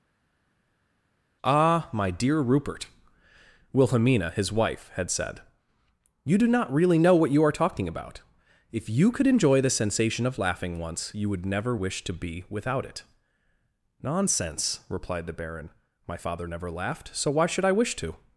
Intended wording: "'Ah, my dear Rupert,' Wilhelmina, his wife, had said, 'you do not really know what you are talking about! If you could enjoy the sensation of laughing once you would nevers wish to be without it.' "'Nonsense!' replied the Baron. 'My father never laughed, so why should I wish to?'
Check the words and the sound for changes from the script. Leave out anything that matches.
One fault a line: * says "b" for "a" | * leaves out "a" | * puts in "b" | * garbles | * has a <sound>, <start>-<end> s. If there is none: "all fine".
* says "never" for "nevers"